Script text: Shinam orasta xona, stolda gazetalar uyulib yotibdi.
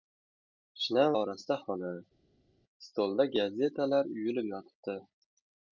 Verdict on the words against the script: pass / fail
pass